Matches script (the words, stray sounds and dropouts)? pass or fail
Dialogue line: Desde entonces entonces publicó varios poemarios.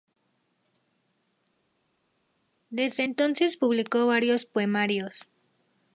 fail